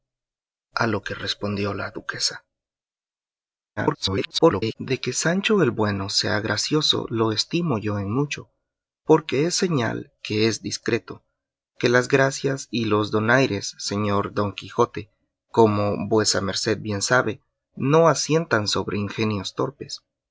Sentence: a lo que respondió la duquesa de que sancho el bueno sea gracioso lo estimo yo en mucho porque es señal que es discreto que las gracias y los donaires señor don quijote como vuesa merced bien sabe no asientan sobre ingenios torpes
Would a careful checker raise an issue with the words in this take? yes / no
yes